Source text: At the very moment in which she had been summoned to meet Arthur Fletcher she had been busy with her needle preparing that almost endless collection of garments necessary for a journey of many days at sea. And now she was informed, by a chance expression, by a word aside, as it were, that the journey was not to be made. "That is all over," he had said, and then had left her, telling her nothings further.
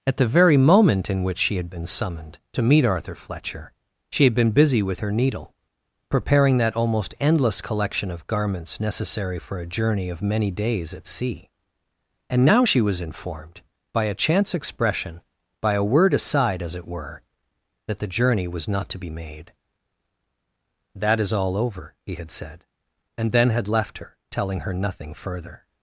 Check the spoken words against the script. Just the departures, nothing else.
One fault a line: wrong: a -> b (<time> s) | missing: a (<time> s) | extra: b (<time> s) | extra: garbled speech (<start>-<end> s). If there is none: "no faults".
wrong: nothings -> nothing (24.7 s)